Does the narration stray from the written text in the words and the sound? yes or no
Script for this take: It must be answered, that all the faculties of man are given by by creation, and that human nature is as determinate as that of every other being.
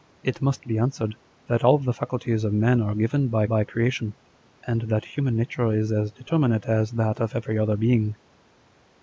no